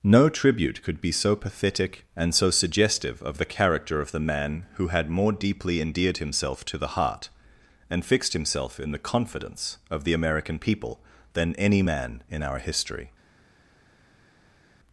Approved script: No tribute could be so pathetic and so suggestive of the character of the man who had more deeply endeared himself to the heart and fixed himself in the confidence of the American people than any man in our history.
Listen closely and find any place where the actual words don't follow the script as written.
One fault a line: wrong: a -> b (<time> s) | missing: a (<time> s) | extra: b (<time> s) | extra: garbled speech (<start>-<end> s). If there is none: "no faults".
no faults